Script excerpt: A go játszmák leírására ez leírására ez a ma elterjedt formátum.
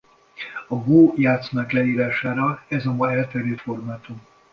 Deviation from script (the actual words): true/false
true